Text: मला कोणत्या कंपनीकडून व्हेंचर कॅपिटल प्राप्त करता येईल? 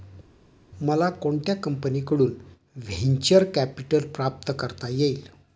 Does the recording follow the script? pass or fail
pass